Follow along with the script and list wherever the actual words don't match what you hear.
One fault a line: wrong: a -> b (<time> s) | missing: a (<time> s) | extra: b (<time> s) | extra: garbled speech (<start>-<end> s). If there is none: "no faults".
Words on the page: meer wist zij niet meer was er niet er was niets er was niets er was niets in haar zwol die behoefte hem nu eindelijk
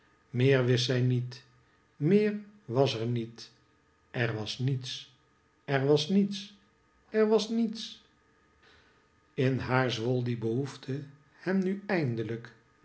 no faults